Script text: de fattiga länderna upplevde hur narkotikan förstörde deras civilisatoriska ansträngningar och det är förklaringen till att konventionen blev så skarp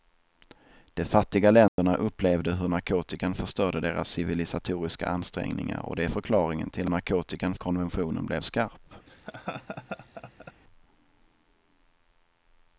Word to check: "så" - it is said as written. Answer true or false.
false